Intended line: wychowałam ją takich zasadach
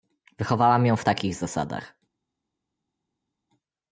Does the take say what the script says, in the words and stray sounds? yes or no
no